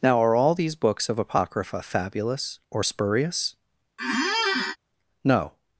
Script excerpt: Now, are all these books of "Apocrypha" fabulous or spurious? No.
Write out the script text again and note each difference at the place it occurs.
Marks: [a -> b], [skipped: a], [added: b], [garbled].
Now, are all these books of "Apocrypha" fabulous or spurious? No.